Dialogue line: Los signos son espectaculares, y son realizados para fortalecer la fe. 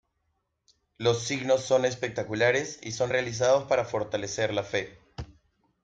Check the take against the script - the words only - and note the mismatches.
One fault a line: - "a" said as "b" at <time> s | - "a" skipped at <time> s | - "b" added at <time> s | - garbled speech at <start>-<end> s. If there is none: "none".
none